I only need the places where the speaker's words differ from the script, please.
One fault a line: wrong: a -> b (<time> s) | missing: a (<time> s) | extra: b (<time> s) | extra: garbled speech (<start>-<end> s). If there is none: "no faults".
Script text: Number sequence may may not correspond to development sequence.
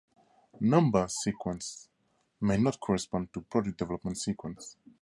missing: may (2.6 s)
extra: product (3.4 s)